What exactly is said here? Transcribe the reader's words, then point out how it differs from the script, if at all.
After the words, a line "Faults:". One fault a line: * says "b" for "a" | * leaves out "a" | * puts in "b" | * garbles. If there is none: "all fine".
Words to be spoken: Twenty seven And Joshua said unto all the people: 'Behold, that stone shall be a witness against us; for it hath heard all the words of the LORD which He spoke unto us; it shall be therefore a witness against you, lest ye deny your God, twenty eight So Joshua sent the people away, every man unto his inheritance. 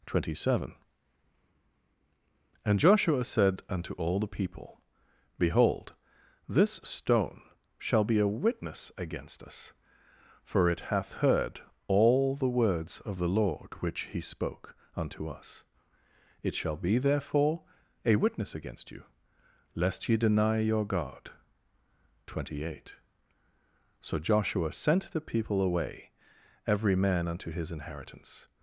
Twenty seven And Joshua said unto all the people: 'Behold, this stone shall be a witness against us; for it hath heard all the words of the LORD which He spoke unto us; it shall be therefore a witness against you, lest ye deny your God, twenty eight So Joshua sent the people away, every man unto his inheritance.
Faults:
* says "this" for "that"